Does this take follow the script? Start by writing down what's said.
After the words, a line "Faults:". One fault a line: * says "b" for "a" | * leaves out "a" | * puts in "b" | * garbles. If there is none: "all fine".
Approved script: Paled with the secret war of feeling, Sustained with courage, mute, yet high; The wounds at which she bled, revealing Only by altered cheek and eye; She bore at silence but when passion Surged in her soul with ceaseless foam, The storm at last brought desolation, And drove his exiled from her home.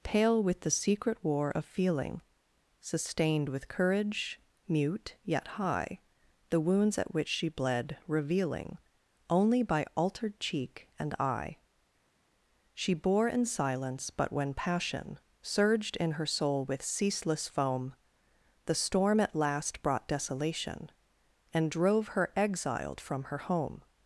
Pale with the secret war of feeling, Sustained with courage, mute, yet high; The wounds at which she bled, revealing Only by altered cheek and eye; She bore in silence but when passion Surged in her soul with ceaseless foam, The storm at last brought desolation, And drove her exiled from her home.
Faults:
* says "Pale" for "Paled"
* says "in" for "at"
* says "her" for "his"